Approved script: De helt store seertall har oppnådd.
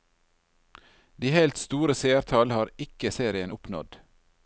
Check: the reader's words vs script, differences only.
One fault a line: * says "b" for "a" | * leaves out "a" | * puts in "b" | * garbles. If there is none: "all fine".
* puts in "ikke serien"